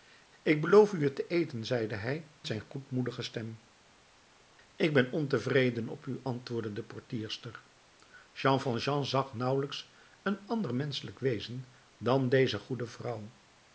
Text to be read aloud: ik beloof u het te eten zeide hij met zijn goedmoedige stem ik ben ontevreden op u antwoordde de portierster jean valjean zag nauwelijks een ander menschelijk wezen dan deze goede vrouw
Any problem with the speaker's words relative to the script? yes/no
yes